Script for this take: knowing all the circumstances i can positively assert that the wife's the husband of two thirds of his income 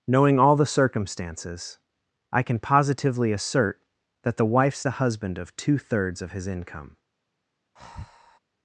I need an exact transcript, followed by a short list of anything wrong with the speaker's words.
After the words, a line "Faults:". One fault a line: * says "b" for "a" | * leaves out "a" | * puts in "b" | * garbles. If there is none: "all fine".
knowing all the circumstances i can positively assert that the wife's the husband of two thirds of his income
Faults:
all fine